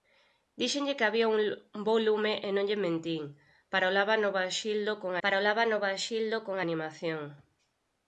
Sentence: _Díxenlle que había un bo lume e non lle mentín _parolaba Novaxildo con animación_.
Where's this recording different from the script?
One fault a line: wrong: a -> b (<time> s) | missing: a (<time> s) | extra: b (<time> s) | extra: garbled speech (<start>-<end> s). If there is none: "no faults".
extra: parolaba Novaxildo con (5.2 s)